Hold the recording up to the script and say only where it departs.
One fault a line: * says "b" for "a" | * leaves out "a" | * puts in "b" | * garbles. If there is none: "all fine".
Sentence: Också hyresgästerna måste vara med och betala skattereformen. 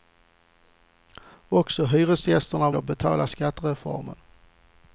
* leaves out "måste vara med"